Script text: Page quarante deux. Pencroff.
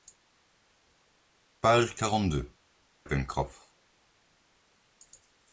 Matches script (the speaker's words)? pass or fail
pass